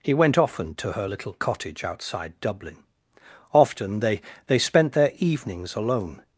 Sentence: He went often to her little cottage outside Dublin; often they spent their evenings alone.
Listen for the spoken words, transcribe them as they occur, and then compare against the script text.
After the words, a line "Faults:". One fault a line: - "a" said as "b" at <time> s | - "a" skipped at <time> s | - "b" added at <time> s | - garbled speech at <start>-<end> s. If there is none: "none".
He went often to her little cottage outside Dublin; often they they spent their evenings alone.
Faults:
- "they" added at 4.5 s